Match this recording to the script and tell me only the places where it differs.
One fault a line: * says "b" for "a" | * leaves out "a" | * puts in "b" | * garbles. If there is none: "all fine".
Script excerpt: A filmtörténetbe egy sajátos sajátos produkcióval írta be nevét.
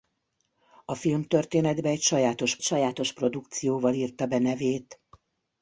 all fine